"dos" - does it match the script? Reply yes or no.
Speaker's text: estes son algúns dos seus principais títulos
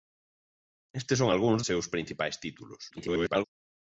no